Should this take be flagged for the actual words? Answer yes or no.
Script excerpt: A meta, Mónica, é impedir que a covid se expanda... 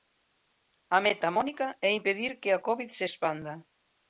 no